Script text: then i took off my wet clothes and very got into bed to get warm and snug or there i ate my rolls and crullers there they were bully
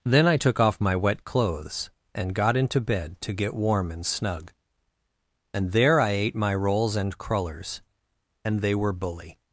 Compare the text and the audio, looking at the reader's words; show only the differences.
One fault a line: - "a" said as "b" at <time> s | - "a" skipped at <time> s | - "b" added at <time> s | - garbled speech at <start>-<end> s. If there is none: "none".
- "very" skipped at 2.3 s
- "or" said as "and" at 5.5 s
- "there" said as "and" at 8.4 s